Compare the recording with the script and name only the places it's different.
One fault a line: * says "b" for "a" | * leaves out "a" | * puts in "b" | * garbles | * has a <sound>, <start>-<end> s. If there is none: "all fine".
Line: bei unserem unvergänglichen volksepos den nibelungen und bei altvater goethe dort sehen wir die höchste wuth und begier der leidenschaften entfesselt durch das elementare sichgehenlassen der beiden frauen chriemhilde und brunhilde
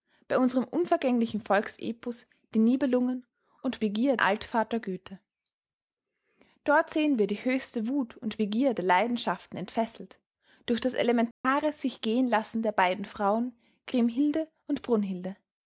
* says "begier" for "bei"
* has a dropout, 11.3-11.4 s